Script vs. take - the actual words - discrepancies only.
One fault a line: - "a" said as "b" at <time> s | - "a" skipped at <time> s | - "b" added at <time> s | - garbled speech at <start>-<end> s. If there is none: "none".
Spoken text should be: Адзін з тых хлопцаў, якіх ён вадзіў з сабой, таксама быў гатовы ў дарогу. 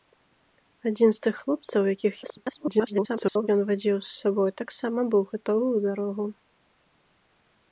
- garbled speech at 2.2-3.5 s